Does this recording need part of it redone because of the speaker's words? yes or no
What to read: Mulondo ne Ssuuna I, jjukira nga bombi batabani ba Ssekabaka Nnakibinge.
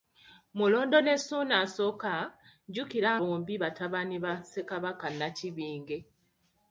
yes